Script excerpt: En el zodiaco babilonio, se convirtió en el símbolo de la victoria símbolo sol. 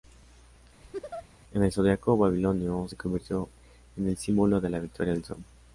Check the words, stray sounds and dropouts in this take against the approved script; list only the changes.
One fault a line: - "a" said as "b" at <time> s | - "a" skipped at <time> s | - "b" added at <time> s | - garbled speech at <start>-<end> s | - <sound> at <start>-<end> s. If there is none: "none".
- laugh at 0.8-1.3 s
- "símbolo" said as "del" at 5.1 s